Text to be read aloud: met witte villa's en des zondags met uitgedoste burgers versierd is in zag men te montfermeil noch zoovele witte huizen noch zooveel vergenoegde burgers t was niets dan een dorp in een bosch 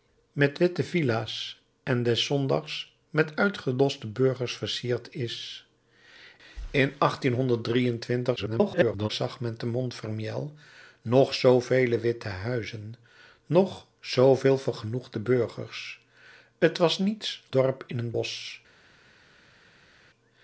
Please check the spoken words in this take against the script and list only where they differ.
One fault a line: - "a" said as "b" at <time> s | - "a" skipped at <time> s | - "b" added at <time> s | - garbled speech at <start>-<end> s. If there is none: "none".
- garbled speech at 8.4-9.1 s
- "dan een" skipped at 17.4 s